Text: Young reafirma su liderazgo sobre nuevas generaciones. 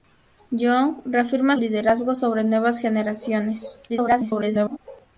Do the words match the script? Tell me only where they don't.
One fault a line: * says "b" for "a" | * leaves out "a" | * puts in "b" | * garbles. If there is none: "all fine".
* leaves out "su"
* garbles